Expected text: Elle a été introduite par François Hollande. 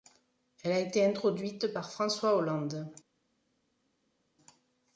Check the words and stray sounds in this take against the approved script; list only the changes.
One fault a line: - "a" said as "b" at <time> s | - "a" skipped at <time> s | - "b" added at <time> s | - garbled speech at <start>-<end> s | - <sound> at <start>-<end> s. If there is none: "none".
none